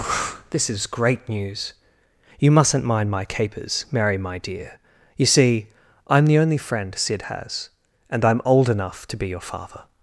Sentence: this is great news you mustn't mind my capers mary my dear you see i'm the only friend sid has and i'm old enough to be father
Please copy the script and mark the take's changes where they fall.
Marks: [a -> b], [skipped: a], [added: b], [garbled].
this is great news you mustn't mind my capers mary my dear you see i'm the only friend sid has and i'm old enough to be [added: your] father